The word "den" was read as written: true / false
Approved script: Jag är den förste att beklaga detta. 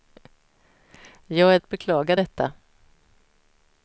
false